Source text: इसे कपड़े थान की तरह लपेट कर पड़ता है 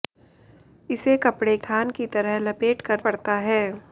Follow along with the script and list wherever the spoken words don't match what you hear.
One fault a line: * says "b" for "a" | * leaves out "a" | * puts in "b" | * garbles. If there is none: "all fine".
all fine